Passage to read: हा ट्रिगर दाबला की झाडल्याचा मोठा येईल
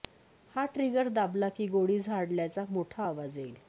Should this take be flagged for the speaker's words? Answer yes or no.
yes